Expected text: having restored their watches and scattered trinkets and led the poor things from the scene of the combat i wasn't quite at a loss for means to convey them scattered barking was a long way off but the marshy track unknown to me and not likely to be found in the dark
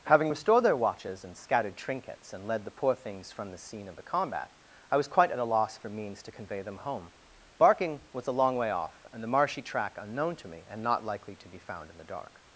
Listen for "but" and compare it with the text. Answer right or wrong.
wrong